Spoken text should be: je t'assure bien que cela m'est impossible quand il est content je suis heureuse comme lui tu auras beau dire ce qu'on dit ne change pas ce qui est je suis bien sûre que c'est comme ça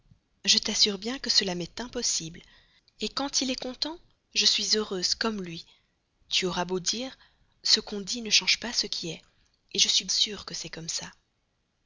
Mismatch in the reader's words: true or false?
true